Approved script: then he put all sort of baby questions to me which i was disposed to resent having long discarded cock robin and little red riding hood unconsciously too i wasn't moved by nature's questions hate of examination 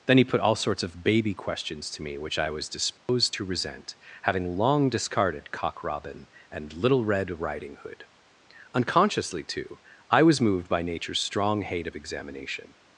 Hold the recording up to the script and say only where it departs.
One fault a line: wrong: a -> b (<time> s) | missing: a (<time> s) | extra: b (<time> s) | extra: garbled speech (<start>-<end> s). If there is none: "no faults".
wrong: sort -> sorts (0.6 s)
wrong: wasn't -> was (10.2 s)
wrong: questions -> strong (11.2 s)